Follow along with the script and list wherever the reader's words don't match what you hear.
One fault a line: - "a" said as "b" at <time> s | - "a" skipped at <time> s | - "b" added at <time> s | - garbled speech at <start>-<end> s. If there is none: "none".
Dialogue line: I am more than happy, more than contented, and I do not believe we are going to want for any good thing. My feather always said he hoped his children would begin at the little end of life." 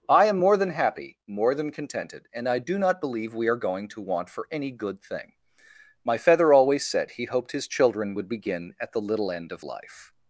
none